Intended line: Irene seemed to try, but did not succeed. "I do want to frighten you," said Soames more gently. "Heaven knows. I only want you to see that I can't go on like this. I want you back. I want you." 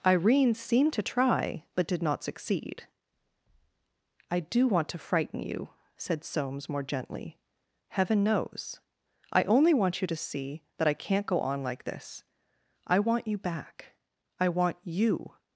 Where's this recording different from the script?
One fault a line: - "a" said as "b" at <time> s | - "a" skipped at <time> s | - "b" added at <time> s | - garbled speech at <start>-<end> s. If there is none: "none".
none